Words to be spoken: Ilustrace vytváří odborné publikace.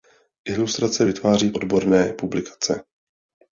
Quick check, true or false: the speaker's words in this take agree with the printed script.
true